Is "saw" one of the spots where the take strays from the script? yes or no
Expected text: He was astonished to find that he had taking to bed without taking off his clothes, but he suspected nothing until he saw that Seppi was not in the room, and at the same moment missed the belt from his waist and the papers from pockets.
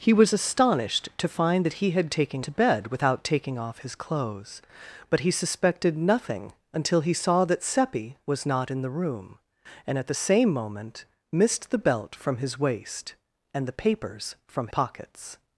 no